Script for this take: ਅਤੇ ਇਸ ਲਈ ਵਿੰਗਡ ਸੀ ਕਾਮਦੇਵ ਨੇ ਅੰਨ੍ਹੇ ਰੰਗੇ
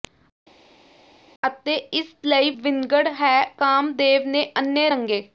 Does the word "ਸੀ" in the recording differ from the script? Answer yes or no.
yes